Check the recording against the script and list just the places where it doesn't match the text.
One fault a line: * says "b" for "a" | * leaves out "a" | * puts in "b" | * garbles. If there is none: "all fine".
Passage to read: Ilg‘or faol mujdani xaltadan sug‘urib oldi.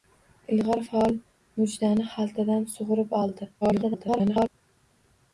* garbles